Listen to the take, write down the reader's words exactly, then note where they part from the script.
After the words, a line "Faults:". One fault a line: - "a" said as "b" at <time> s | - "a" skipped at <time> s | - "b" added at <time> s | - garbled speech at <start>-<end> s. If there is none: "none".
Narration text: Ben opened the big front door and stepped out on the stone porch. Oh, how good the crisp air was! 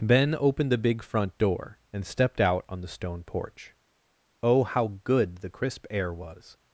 Ben opened the big front door and stepped out on the stone porch. Oh, how good the crisp air was!
Faults:
none